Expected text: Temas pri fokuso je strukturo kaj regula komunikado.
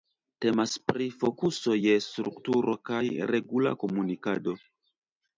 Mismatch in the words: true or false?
false